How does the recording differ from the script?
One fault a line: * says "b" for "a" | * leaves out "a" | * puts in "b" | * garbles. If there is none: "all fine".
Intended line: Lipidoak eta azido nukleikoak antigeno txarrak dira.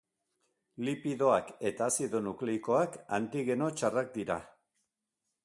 all fine